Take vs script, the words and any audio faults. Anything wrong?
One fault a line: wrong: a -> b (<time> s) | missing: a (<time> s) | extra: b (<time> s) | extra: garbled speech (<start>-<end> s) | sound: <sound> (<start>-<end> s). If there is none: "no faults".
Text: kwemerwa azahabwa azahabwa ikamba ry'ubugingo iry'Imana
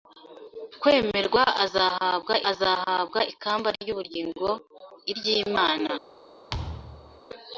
sound: thud (6.5-7.2 s)